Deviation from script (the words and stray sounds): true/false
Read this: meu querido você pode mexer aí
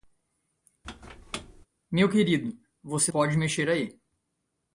true